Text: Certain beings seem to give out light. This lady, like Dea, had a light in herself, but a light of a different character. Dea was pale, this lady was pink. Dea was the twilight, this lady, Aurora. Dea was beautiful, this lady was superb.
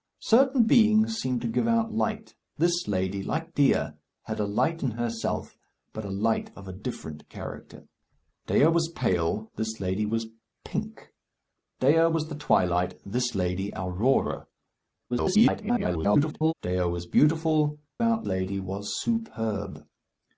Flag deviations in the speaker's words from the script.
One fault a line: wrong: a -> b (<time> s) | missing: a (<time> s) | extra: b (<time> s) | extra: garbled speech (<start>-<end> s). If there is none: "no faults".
extra: garbled speech (15.1-16.5 s)
wrong: this -> out (18.0 s)